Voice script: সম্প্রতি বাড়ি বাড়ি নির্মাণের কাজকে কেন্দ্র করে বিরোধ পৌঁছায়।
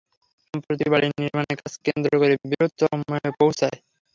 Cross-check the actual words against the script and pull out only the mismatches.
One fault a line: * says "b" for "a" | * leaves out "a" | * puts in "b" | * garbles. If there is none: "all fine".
* leaves out "বাড়ি"
* puts in "চরমে"